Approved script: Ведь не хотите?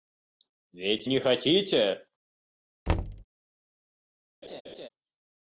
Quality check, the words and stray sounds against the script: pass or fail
fail